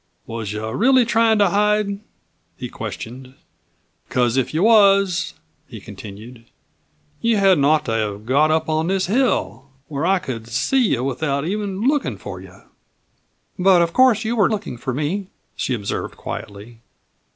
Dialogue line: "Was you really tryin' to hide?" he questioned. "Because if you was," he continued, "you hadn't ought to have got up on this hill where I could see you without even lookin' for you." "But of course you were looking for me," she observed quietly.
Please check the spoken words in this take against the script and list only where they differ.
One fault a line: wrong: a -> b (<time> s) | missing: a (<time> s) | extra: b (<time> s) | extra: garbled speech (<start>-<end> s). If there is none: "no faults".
no faults